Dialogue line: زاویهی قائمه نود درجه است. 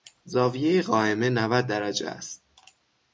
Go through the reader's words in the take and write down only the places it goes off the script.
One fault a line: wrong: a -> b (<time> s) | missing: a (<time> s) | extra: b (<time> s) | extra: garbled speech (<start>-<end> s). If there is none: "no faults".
no faults